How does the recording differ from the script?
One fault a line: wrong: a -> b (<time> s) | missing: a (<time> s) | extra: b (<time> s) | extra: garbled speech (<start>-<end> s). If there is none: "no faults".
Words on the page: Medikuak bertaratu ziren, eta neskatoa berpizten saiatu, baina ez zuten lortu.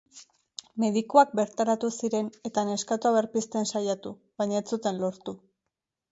no faults